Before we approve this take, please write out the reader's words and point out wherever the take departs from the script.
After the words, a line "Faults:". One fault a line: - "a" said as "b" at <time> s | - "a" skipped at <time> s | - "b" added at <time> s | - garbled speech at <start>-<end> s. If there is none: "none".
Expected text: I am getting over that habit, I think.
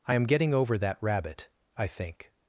I am getting over that rabbit, I think.
Faults:
- "habit" said as "rabbit" at 1.0 s